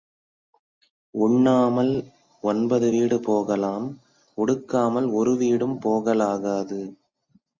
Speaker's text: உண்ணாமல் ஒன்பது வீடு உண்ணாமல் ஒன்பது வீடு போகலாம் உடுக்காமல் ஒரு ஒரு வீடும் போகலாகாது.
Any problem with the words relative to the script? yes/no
yes